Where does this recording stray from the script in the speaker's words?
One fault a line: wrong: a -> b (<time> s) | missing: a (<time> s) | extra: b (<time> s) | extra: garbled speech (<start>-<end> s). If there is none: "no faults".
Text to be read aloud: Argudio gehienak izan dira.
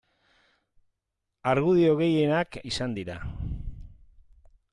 no faults